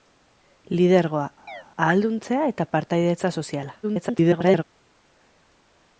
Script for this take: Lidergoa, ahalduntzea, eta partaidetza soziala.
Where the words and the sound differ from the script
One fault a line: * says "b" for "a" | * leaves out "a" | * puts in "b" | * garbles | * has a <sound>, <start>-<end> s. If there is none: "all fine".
* has a chirp, 1.5-1.6 s
* garbles